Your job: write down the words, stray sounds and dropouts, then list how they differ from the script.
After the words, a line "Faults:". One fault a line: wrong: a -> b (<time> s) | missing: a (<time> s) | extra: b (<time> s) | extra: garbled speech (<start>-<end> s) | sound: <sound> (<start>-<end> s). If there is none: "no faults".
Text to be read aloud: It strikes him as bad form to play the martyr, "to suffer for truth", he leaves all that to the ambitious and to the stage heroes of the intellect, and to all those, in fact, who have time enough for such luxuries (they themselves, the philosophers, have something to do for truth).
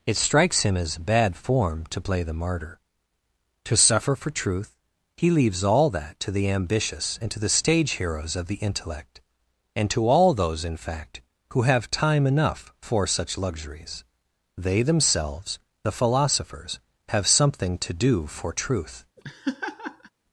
It strikes him as bad form to play the martyr, "to suffer for truth", he leaves all that to the ambitious and to the stage heroes of the intellect, and to all those, in fact, who have time enough for such luxuries (they themselves, the philosophers, have something to do for truth).
Faults:
sound: laugh (19.2-20.1 s)